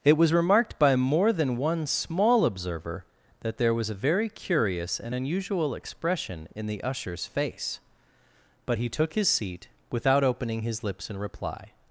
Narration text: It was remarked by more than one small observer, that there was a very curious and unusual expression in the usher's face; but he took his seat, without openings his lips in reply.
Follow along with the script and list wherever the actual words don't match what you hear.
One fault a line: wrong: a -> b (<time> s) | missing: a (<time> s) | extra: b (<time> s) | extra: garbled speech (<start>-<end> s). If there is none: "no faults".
wrong: openings -> opening (10.2 s)